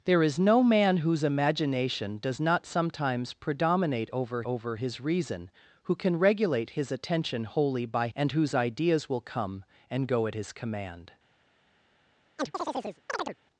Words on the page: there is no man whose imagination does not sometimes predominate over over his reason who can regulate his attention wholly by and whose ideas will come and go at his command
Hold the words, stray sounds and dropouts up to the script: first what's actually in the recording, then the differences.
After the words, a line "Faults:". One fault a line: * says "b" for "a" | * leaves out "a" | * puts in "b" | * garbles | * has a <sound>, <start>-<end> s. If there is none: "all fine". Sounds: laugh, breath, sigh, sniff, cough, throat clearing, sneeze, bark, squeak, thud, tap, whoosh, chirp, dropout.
there is no man whose imagination does not sometimes predominate over over his reason who can regulate his attention wholly by and whose ideas will come and go at his command
Faults:
* has a chirp, 12.4-13.4 s